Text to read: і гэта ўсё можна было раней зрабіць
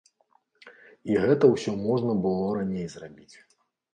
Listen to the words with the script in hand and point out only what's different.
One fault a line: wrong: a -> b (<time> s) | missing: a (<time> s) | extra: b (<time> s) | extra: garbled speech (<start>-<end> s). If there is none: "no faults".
no faults